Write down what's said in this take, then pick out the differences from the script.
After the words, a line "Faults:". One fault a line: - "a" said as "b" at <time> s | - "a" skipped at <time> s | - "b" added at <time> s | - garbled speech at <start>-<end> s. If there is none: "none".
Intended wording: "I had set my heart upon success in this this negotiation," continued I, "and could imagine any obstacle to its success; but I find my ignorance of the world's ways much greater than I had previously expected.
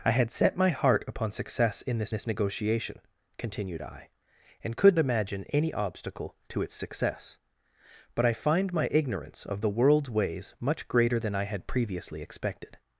"I had set my heart upon success in this this negotiation," continued I, "and could imagine any obstacle to its success; but I find my ignorance of the world's ways much greater than I had previously expected.
Faults:
none